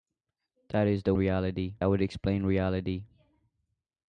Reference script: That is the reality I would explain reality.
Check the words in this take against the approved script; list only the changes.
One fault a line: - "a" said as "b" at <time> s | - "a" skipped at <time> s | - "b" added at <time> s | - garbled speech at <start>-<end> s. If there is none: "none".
none